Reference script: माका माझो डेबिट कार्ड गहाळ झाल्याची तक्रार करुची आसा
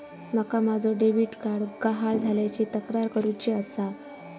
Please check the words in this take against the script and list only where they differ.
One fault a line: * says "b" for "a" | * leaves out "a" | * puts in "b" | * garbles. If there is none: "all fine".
all fine